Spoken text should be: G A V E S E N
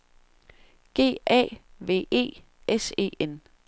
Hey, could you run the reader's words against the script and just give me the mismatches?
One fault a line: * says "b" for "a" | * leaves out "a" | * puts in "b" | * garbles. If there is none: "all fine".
all fine